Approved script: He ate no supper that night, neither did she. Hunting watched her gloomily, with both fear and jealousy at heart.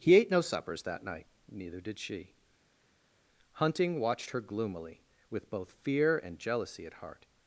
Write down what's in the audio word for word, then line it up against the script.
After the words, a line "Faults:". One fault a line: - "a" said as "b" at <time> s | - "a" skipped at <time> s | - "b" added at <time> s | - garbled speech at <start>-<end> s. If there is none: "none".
He ate no suppers that night, neither did she. Hunting watched her gloomily, with both fear and jealousy at heart.
Faults:
- "supper" said as "suppers" at 0.4 s